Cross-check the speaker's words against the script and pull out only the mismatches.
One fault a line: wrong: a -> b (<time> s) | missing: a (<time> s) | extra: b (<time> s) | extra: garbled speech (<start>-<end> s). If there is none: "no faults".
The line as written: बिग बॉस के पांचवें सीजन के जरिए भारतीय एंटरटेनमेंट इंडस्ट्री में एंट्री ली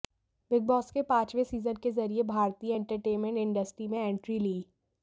no faults